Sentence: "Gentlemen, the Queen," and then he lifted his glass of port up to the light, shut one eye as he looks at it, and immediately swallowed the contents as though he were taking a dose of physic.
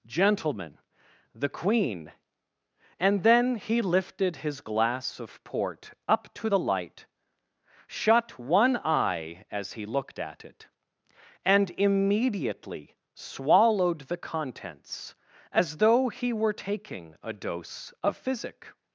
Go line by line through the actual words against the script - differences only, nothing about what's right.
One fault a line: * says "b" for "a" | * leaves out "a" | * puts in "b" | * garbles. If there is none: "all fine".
* says "looked" for "looks"